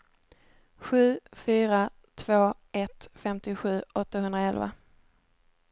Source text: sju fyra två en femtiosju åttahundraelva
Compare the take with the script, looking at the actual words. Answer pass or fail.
fail